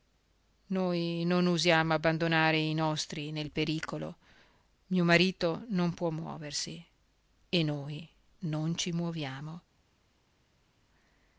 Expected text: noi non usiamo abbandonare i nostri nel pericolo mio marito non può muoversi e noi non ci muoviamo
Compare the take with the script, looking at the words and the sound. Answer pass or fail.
pass